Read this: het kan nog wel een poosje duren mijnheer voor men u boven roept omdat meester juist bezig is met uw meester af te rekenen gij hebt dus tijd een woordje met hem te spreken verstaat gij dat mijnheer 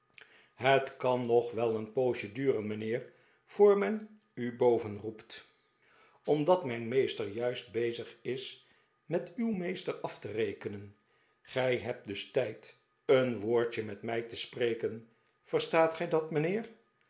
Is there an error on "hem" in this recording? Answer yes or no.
yes